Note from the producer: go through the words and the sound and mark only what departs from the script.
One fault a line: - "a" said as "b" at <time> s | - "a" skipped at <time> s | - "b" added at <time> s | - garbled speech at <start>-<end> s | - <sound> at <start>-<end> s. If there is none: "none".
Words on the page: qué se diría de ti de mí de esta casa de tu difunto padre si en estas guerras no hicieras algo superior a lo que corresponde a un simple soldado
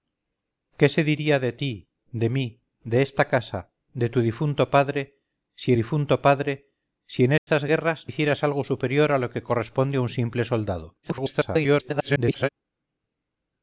- "difunto padre si" added at 5.7 s
- dropout at 7.4-7.5 s
- "no" skipped at 8.1 s
- garbled speech at 11.0-12.5 s